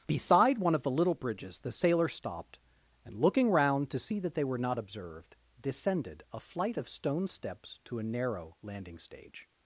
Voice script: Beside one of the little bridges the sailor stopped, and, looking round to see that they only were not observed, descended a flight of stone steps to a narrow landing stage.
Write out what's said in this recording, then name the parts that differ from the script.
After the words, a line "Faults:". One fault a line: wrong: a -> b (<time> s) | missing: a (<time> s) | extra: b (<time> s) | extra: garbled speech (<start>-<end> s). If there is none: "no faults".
Beside one of the little bridges the sailor stopped, and, looking round to see that they were not observed, descended a flight of stone steps to a narrow landing stage.
Faults:
missing: only (4.4 s)